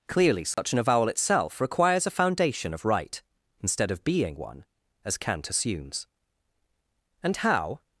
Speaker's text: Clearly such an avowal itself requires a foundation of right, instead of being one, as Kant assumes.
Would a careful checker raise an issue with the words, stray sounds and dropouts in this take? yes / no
yes